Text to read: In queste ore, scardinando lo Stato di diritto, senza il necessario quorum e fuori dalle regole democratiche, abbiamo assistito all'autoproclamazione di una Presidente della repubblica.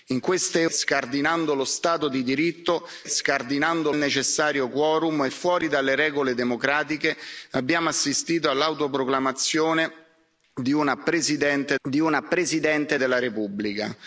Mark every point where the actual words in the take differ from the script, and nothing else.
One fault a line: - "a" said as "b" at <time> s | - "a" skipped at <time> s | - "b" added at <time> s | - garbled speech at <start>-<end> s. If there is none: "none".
- "ore" skipped at 0.7 s
- "senza" said as "scardinando" at 3.1 s
- "di una Presidente" added at 11.8 s